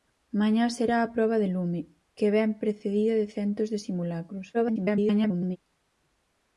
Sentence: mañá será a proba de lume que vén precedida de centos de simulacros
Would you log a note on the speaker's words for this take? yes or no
yes